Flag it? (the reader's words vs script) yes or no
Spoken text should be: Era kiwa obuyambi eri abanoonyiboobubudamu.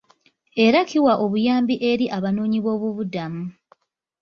no